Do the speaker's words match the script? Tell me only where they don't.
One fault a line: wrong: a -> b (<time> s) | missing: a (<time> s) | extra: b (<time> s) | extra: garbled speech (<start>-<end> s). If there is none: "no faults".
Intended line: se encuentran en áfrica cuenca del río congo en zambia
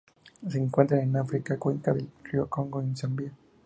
no faults